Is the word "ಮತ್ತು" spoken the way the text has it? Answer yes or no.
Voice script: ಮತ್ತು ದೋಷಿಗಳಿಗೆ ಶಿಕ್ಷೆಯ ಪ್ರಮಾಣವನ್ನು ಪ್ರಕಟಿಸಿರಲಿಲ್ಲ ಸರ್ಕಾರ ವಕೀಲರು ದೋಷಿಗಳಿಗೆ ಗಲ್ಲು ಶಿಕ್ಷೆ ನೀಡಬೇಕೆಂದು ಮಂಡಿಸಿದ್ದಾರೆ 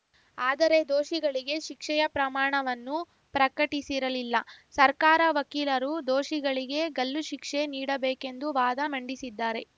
no